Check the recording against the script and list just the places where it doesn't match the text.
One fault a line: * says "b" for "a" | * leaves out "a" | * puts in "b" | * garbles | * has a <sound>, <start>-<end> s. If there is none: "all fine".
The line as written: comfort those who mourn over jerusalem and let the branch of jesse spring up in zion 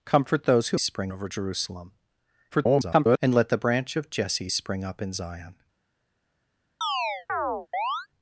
* says "spring" for "mourn"
* garbles
* has a chirp, 6.8-8.1 s